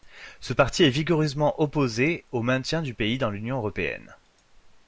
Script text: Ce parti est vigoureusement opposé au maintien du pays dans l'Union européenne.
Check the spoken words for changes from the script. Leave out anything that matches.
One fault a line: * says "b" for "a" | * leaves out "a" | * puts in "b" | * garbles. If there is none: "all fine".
all fine